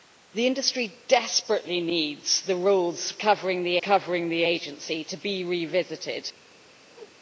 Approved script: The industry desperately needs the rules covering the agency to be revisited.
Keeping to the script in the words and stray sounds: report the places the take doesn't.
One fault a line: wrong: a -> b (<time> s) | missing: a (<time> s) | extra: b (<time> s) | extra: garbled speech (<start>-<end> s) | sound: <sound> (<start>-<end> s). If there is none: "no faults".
extra: covering the (3.8 s)
sound: whoosh (6.9-7.2 s)